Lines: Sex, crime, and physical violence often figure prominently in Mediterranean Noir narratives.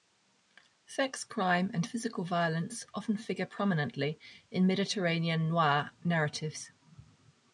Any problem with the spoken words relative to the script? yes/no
no